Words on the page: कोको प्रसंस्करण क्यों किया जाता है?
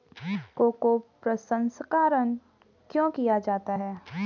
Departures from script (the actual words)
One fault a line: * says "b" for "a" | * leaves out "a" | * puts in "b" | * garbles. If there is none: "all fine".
all fine